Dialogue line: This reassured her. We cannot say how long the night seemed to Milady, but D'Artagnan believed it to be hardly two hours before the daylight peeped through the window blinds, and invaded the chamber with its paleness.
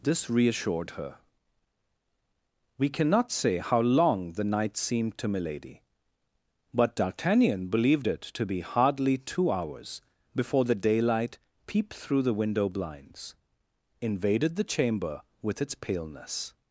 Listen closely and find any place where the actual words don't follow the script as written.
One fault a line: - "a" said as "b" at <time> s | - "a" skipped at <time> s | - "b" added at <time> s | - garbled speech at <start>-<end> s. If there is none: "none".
- "and" skipped at 13.3 s